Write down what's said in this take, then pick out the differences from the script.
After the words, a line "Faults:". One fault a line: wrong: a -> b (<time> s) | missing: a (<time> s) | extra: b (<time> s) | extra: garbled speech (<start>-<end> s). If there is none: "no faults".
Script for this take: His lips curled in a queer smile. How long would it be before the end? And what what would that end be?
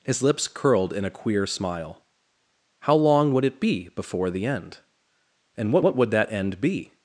His lips curled in a queer smile. How long would it be before the end? And what what would that end be?
Faults:
no faults